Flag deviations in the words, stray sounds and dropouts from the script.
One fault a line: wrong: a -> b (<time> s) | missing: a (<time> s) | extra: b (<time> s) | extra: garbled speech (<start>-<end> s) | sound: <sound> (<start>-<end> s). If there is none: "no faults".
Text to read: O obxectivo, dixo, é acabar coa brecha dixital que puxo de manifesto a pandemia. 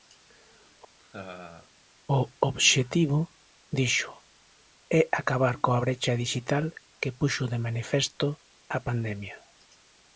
sound: laugh (1.0-1.7 s)